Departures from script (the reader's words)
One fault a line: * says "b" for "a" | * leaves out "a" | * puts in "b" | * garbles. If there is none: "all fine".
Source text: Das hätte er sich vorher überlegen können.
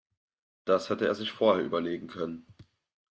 all fine